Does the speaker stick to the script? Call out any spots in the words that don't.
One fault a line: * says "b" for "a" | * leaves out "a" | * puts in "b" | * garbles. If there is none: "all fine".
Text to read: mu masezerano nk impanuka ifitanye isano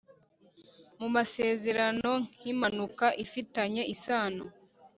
all fine